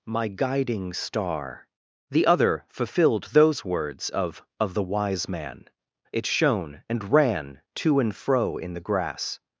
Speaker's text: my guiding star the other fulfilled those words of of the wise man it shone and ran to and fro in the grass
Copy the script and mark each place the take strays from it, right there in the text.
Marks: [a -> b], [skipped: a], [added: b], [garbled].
my guiding star the other fulfilled those words of of the wise man it shone and ran to and fro in the grass